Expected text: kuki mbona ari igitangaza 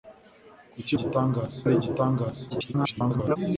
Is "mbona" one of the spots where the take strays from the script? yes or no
yes